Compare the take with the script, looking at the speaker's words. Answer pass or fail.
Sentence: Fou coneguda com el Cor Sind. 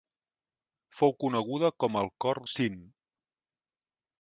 pass